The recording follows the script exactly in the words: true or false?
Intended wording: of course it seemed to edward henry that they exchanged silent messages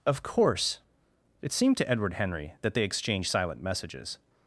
true